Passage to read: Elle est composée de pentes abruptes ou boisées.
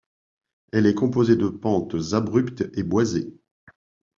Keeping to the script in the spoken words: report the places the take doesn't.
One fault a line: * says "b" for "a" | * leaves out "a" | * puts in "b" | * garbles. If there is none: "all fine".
* says "et" for "ou"